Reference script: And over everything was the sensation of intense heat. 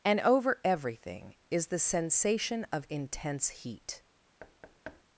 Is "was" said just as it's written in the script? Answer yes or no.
no